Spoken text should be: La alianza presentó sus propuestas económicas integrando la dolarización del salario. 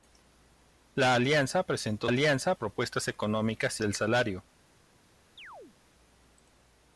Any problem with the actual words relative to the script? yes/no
yes